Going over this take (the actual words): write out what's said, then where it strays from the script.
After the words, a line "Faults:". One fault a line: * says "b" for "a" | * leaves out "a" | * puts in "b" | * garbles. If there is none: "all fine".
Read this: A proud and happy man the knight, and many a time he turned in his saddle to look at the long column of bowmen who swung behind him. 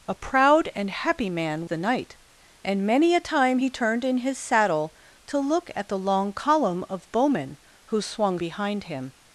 A proud and happy man the knight, and many a time he turned in his saddle to look at the long column of bowmen who swung behind him.
Faults:
all fine